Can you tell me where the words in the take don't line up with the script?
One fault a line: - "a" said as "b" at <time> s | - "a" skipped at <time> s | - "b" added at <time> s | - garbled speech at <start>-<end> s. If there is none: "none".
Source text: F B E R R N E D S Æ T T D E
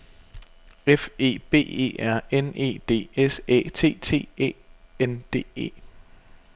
- "E" added at 1.2 s
- "R" skipped at 2.2 s
- "E N" added at 4.4 s